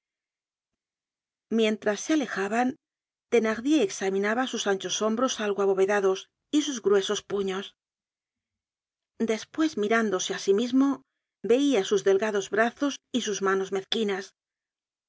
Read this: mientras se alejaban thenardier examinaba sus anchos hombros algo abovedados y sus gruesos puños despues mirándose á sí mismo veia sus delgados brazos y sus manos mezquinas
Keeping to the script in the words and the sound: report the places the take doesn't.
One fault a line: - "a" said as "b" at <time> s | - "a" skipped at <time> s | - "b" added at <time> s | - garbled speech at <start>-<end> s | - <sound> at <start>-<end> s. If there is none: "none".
none